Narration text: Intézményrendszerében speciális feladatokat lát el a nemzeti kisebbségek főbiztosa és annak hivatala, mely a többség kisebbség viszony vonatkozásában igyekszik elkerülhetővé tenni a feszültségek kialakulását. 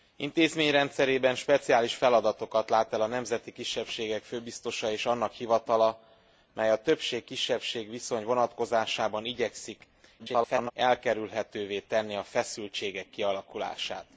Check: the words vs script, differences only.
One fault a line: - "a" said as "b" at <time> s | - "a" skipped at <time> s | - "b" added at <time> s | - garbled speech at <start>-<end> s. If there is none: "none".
- garbled speech at 10.2-10.7 s